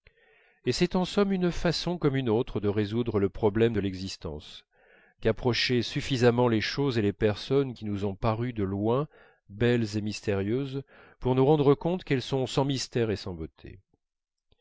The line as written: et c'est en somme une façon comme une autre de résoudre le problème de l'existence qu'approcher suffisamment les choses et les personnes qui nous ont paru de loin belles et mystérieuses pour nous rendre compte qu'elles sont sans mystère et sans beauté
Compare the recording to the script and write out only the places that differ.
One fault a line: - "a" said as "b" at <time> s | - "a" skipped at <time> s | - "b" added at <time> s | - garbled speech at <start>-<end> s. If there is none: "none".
none